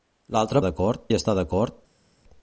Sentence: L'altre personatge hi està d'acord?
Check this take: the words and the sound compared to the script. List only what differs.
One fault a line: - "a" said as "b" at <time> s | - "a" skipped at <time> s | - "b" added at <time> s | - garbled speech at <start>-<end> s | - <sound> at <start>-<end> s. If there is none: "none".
- "personatge" said as "d'acord" at 0.6 s